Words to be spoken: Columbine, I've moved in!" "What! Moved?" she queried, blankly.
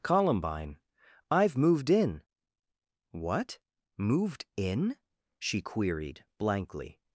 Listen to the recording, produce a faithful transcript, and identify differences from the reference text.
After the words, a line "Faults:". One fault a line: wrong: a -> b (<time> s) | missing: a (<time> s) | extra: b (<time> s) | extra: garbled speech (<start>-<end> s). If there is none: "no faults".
Columbine, I've moved in!" "What! Moved in?" she queried, blankly.
Faults:
extra: in (4.6 s)